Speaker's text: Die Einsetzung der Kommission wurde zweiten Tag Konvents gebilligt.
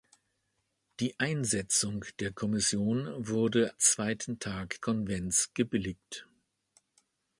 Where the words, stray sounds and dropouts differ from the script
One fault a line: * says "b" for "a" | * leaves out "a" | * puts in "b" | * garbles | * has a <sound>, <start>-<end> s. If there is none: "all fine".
all fine